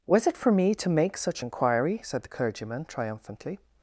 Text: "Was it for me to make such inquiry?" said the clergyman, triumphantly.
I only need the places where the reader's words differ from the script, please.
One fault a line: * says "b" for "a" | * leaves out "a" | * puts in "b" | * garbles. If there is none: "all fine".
all fine